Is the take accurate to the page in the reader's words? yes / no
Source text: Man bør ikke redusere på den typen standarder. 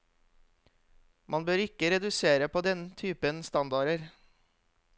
yes